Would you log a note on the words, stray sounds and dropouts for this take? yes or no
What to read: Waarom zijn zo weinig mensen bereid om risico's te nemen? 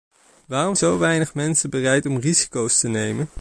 yes